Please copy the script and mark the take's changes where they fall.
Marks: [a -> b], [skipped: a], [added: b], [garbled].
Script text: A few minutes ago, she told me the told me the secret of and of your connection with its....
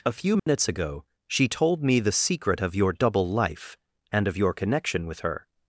A few minutes ago, she told me the [told me the secret of -> secret of your double life] and of your connection with [its.... -> her]